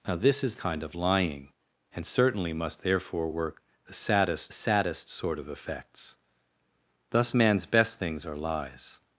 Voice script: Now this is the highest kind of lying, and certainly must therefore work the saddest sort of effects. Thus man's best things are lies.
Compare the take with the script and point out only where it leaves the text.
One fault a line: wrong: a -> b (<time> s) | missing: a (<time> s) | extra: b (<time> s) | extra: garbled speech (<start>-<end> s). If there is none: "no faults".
missing: the highest (0.6 s)
extra: saddest (4.5 s)